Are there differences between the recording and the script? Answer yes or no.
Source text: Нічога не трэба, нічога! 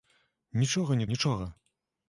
yes